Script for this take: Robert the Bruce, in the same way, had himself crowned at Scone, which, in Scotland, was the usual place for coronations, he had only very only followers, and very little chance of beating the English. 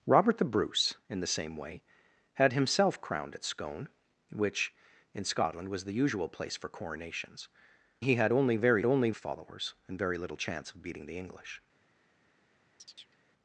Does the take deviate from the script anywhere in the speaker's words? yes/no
no